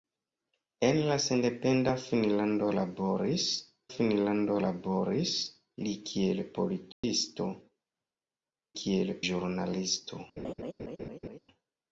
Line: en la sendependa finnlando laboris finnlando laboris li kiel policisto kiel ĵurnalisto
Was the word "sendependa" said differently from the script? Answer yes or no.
no